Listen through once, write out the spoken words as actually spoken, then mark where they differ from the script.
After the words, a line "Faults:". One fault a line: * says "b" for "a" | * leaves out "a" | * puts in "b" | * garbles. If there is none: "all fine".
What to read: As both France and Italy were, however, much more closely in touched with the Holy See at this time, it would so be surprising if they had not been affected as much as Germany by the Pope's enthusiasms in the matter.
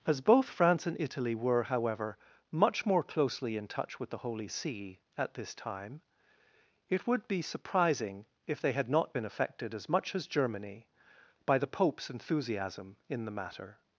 As both France and Italy were, however, much more closely in touch with the Holy See at this time, it would be surprising if they had not been affected as much as Germany by the Pope's enthusiasm in the matter.
Faults:
* says "touch" for "touched"
* leaves out "so"
* says "enthusiasm" for "enthusiasms"